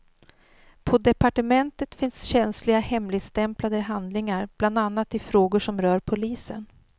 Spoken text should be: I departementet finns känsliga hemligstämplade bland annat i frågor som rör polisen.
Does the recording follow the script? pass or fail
fail